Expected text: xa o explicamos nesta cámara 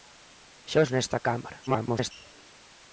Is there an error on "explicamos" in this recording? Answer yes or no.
yes